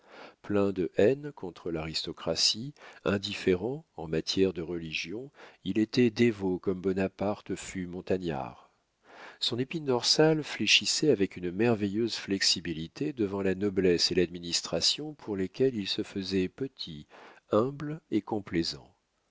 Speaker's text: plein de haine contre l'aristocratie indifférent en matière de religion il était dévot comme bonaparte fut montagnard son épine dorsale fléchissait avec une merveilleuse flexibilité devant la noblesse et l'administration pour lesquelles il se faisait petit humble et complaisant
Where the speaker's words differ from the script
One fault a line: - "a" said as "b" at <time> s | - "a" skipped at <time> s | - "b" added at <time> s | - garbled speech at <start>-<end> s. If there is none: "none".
none